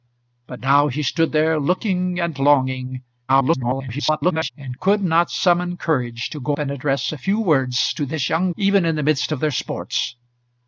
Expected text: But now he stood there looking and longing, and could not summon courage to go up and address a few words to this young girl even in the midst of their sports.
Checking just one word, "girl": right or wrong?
wrong